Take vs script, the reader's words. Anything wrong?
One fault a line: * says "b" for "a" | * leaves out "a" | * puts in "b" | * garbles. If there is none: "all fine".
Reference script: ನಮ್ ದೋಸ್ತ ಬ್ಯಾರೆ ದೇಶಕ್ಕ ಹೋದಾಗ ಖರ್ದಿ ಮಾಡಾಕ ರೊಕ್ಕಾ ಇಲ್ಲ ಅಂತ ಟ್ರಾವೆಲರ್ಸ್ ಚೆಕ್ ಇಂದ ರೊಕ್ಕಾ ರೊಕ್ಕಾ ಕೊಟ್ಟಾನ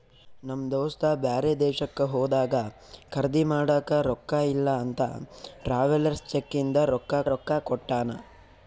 all fine